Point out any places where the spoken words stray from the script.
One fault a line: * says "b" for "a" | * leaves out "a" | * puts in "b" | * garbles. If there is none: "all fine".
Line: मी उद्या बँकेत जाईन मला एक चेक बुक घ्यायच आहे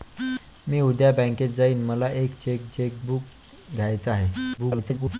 * puts in "चेक"
* garbles